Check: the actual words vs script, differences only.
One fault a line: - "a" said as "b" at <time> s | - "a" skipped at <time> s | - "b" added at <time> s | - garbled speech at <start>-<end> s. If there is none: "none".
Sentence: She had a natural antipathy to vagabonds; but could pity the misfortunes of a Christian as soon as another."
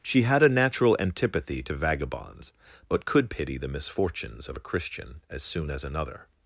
none